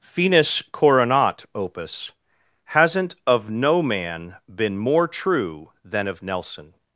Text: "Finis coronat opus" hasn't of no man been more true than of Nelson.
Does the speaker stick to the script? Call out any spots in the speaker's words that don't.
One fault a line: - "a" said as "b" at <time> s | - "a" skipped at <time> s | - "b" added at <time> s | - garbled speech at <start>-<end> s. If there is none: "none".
none